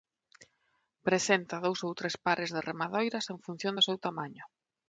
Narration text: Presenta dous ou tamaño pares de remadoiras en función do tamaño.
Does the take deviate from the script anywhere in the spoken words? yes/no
yes